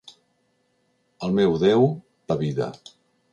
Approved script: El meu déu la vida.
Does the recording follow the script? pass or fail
pass